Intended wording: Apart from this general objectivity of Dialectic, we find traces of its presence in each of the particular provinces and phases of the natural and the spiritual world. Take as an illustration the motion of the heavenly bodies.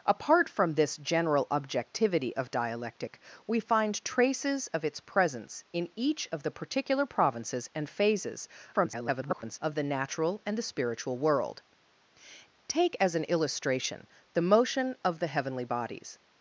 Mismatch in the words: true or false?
true